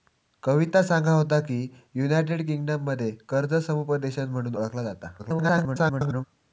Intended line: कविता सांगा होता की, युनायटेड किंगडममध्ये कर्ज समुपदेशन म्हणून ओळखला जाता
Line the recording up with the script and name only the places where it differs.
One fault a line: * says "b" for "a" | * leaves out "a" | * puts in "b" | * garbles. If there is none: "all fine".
* garbles